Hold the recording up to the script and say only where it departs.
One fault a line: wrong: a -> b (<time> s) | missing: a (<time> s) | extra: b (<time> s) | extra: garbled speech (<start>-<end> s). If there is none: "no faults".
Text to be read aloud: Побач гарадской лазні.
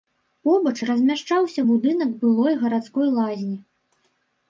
extra: размяшчаўся будынак былой (0.9 s)